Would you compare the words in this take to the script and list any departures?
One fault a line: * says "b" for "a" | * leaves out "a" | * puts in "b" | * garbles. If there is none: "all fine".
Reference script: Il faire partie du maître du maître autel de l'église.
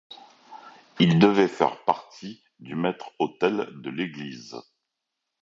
* puts in "devait"
* leaves out "du maître"